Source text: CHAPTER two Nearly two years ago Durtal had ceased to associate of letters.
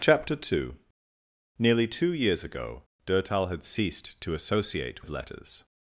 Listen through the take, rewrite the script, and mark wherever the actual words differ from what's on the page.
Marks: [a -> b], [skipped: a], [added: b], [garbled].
CHAPTER two Nearly two years ago Durtal had ceased to associate of letters.